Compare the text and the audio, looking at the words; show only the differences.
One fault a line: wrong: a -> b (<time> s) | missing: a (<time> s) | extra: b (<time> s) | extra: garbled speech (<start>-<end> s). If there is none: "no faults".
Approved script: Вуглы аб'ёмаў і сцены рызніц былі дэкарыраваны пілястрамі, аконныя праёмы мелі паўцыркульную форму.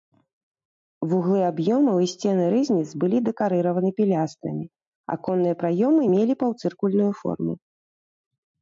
no faults